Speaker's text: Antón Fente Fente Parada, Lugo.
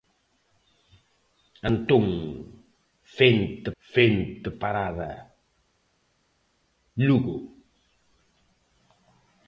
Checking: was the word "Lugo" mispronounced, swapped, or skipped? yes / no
no